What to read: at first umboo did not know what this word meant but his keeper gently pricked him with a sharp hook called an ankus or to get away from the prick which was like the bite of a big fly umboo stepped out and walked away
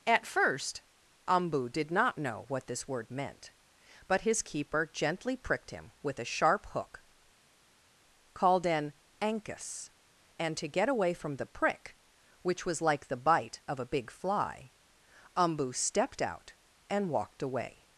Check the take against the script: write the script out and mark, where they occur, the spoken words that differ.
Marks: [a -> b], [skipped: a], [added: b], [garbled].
at first umboo did not know what this word meant but his keeper gently pricked him with a sharp hook called an ankus [or -> and] to get away from the prick which was like the bite of a big fly umboo stepped out and walked away